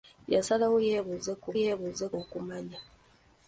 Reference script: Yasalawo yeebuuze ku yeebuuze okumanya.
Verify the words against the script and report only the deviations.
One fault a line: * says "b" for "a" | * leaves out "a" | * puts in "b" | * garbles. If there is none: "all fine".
all fine